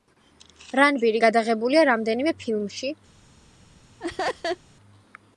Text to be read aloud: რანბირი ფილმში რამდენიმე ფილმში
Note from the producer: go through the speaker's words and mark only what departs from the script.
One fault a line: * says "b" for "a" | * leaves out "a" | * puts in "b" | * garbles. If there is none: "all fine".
* says "გადაღებულია" for "ფილმში"